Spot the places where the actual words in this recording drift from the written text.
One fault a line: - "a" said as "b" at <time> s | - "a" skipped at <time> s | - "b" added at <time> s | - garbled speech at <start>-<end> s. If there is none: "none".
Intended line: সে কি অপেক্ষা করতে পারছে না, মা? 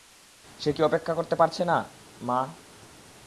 none